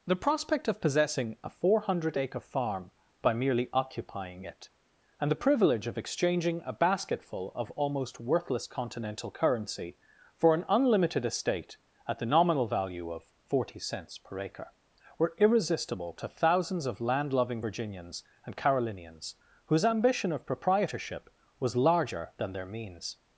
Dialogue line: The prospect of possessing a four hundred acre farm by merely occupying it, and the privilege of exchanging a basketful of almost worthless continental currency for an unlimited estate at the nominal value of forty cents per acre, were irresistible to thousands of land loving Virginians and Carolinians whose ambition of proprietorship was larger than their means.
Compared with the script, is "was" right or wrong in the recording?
right